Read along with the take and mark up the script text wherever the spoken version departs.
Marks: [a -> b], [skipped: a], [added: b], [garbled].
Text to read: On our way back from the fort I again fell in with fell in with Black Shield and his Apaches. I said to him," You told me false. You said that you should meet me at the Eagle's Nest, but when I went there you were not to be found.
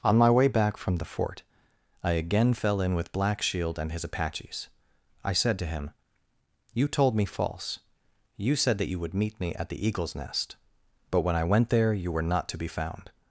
On [our -> my] way back from the fort I again fell in with [skipped: fell in with] Black Shield and his Apaches. I said to him," You told me false. You said that you [should -> would] meet me at the Eagle's Nest, but when I went there you were not to be found.